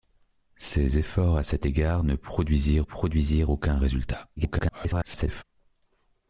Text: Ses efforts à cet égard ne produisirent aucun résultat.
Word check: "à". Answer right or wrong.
right